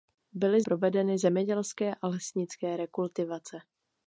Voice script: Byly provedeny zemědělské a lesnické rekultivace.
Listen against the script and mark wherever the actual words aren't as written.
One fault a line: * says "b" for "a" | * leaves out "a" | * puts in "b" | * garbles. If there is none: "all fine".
all fine